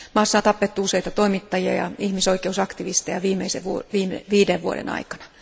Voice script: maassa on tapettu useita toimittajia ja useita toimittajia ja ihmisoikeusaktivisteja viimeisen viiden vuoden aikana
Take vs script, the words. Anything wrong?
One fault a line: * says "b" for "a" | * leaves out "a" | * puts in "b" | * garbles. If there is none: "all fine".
* leaves out "useita toimittajia ja"